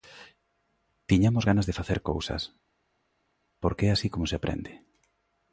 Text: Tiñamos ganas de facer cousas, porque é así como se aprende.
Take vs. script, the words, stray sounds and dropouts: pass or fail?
pass